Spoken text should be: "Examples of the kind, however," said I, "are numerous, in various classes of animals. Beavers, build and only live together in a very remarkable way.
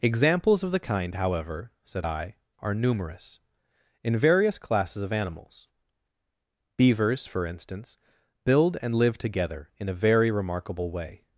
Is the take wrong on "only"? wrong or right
wrong